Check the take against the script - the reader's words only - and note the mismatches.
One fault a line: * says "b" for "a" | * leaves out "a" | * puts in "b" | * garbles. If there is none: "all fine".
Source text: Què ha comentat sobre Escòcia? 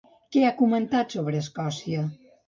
all fine